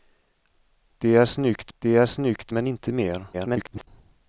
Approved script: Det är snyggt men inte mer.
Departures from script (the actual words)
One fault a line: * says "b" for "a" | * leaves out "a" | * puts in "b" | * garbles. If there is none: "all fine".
* puts in "det är snyggt"
* garbles